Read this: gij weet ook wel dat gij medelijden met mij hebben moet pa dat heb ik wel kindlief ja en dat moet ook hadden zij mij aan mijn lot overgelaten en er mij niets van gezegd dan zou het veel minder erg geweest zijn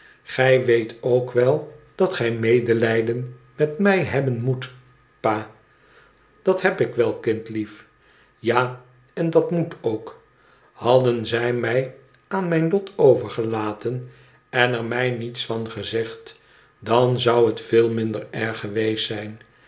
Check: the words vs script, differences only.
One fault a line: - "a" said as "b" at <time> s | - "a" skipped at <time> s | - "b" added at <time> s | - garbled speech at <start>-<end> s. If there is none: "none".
none